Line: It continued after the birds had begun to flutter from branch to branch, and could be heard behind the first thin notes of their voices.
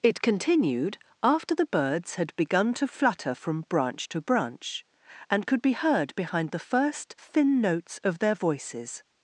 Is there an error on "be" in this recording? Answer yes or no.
no